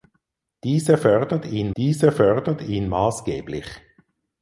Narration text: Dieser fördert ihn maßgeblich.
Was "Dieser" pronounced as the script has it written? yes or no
yes